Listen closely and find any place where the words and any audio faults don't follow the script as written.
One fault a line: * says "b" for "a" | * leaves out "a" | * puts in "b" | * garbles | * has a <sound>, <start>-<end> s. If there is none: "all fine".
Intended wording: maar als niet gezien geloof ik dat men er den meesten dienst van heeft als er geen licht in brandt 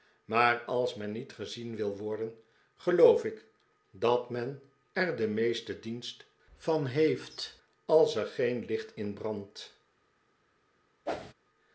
* puts in "men"
* puts in "wil worden"
* has a whoosh, 11.1-11.3 s